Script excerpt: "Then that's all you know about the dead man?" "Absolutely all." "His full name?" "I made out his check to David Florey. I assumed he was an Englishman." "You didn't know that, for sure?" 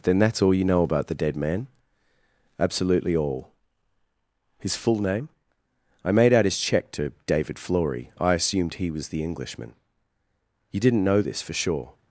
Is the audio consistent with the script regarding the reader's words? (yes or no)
no